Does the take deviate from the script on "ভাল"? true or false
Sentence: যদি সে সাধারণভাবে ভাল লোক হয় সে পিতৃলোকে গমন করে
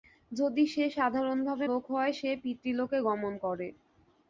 true